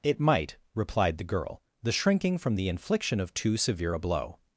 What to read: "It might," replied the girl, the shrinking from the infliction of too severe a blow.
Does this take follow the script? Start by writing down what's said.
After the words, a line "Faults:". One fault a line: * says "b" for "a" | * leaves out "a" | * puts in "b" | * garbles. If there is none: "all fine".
"It might," replied the girl, the shrinking from the infliction of too severe a blow.
Faults:
all fine